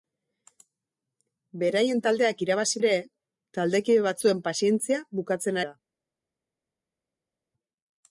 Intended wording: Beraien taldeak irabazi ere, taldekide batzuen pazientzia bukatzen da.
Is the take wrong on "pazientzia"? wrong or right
right